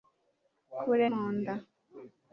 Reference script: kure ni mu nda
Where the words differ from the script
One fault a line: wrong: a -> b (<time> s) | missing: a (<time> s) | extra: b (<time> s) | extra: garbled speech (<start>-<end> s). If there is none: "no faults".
missing: ni (1.1 s)